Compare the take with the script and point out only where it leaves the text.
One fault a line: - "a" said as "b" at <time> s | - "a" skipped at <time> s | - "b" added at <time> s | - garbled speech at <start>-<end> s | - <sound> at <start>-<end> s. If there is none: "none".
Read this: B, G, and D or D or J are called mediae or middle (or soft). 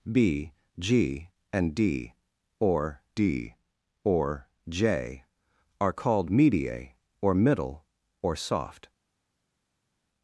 none